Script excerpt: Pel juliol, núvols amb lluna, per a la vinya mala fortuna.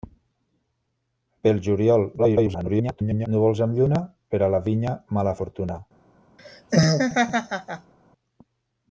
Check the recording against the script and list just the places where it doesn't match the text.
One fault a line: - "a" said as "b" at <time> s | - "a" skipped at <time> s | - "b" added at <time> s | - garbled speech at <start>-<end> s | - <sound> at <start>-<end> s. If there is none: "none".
- garbled speech at 2.2-3.3 s
- laugh at 6.4-7.9 s